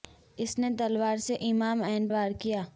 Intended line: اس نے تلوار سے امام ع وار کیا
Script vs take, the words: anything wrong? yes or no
no